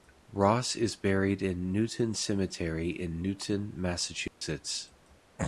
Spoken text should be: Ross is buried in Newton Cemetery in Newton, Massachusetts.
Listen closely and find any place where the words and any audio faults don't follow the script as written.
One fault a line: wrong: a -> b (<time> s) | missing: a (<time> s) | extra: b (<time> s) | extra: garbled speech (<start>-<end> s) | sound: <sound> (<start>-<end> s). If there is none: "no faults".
sound: dropout (4.3-4.4 s)